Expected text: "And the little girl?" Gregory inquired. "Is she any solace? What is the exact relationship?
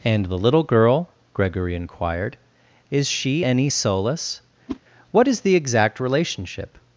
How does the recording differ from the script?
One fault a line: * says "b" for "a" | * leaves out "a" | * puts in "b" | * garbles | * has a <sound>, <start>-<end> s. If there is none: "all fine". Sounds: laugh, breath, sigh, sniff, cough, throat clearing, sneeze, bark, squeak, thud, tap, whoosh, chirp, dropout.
* has a whoosh, 4.7-4.8 s